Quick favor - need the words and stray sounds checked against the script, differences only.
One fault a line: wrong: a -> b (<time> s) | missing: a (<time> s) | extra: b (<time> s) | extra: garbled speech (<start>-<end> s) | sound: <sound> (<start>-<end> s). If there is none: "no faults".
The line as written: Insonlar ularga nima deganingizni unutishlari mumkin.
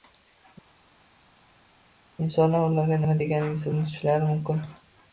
no faults